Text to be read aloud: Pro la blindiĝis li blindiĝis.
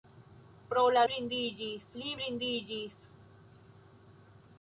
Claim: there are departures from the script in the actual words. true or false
false